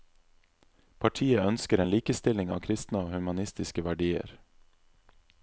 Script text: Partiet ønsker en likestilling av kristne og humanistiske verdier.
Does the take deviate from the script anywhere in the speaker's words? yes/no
no